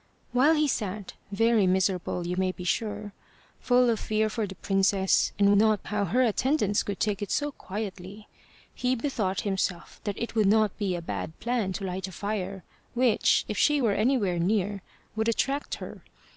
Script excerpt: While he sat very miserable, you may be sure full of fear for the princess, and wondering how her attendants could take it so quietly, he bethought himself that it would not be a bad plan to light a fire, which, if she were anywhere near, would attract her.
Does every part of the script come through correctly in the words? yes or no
no